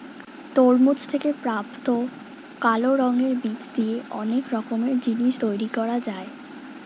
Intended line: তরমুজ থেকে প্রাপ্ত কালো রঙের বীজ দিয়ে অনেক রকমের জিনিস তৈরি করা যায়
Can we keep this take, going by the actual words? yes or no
yes